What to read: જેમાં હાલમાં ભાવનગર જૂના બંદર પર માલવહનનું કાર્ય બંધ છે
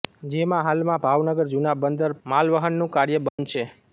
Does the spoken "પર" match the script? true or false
false